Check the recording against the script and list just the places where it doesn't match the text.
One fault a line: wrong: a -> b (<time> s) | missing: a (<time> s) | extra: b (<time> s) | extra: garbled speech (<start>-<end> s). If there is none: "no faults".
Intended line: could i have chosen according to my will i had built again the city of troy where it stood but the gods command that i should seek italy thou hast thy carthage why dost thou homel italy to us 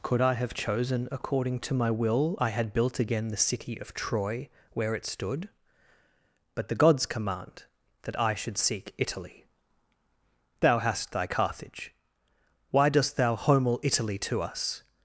no faults